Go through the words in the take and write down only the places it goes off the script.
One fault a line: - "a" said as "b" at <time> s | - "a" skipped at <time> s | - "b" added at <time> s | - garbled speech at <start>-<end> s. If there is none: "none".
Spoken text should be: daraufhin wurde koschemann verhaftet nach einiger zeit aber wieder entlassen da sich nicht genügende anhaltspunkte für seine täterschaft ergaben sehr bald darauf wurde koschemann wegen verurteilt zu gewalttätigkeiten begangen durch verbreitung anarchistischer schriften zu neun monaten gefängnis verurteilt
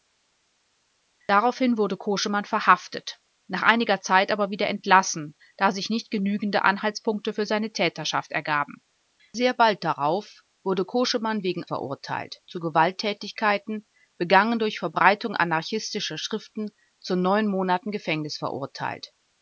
none